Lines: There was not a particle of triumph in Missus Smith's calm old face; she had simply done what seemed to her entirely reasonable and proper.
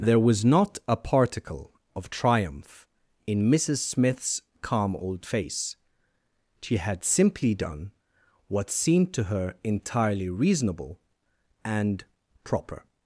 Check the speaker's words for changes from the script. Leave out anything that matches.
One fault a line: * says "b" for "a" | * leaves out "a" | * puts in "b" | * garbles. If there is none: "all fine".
all fine